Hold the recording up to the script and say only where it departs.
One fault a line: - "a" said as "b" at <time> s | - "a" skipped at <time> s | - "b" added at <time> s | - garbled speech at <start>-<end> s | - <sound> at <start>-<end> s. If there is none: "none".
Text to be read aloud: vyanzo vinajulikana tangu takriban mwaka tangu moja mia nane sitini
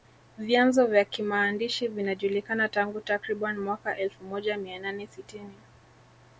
- "vya kimaandishi" added at 0.9 s
- "tangu" said as "elfu" at 4.0 s